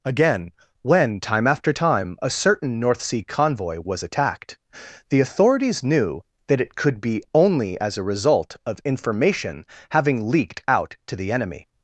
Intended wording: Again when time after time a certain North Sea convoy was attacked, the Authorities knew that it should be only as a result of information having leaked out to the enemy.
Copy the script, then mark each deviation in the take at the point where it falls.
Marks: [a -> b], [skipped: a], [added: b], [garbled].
Again when time after time a certain North Sea convoy was attacked, the Authorities knew that it [should -> could] be only as a result of information having leaked out to the enemy.